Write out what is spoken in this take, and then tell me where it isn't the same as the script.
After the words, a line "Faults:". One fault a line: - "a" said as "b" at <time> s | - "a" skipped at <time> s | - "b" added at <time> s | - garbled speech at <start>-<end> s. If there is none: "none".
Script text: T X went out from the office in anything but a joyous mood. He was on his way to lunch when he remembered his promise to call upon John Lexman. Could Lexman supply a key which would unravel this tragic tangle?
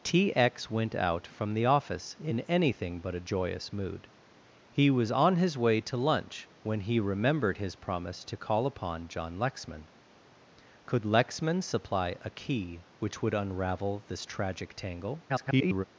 T X went out from the office in anything but a joyous mood. He was on his way to lunch when he remembered his promise to call upon John Lexman. Could Lexman supply a key which would unravel this tragic tangle? [garbled]
Faults:
- garbled speech at 15.3-15.8 s